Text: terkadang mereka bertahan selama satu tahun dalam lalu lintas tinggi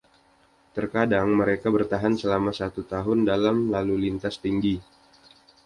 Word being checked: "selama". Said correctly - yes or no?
yes